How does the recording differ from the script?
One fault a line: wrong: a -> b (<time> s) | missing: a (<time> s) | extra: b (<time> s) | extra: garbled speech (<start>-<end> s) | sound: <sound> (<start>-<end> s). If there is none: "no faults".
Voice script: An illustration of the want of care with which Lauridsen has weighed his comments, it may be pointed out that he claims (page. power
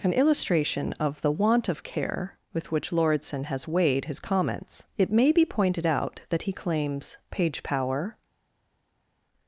no faults